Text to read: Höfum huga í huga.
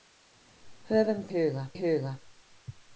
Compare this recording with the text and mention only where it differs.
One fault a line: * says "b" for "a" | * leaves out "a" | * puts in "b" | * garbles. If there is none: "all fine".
all fine